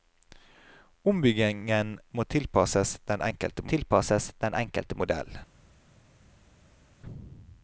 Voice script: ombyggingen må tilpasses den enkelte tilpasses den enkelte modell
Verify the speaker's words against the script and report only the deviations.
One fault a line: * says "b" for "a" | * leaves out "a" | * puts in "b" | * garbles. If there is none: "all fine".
all fine